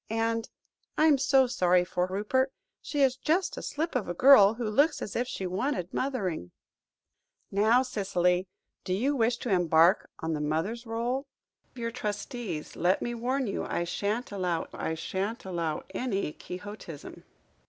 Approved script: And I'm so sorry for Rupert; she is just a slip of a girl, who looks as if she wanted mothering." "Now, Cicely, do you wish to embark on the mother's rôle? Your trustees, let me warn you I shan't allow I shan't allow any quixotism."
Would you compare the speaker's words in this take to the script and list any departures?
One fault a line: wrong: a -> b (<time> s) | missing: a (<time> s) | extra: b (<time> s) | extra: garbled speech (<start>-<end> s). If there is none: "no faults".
no faults